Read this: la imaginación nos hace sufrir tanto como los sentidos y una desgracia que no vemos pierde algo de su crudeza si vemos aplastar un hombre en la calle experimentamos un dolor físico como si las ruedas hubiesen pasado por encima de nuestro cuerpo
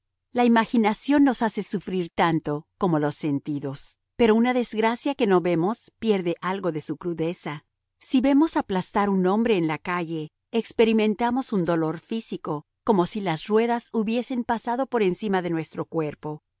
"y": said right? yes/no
no